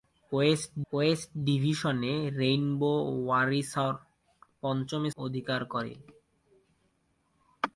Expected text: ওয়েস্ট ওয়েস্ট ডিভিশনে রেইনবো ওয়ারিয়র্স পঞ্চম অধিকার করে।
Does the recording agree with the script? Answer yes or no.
yes